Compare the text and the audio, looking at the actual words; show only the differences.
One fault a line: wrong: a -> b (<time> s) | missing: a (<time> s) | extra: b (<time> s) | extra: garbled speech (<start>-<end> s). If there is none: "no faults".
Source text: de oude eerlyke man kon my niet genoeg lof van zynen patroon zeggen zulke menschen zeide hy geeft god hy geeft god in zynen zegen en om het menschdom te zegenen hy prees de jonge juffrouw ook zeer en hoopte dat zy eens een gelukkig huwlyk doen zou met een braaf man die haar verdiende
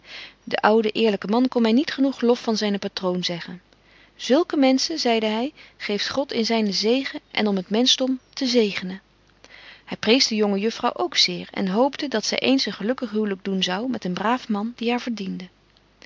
missing: hy geeft god (6.3 s)